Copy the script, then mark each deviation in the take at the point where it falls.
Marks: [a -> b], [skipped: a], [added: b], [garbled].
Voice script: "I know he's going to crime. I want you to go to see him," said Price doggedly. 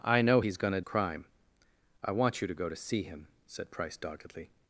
"I know he's going to crime. I want you to go to see him," said Price doggedly.